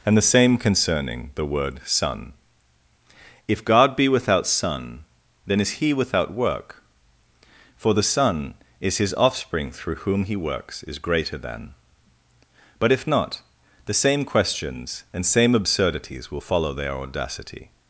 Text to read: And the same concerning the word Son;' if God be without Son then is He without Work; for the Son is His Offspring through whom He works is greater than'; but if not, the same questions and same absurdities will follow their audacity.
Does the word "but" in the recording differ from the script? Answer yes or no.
no